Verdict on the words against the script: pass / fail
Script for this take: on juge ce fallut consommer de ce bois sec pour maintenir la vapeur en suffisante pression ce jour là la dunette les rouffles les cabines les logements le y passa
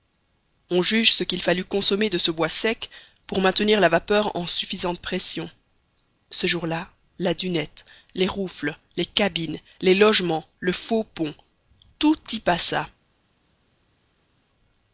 fail